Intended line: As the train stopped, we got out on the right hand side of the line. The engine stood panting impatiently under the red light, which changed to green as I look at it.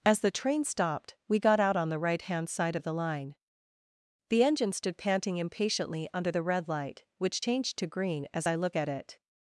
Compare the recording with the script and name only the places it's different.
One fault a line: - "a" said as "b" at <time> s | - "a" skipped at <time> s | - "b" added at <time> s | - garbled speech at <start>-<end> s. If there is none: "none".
none